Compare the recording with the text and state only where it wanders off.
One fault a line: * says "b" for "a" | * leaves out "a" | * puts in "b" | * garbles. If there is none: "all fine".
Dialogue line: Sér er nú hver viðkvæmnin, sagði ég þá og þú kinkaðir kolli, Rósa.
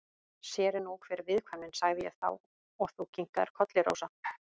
all fine